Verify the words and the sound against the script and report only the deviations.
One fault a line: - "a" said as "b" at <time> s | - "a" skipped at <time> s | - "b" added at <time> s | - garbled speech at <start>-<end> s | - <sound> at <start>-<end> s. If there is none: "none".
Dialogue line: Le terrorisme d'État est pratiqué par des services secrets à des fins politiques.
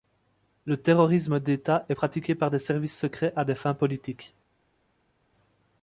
none